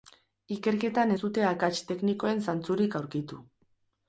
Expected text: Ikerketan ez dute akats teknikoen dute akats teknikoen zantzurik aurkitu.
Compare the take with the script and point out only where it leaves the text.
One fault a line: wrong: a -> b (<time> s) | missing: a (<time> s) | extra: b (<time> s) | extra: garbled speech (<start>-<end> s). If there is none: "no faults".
missing: dute akats teknikoen (2.4 s)